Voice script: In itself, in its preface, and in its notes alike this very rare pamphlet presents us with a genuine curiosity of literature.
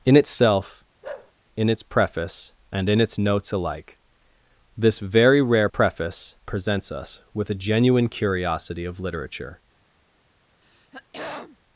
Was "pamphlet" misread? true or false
true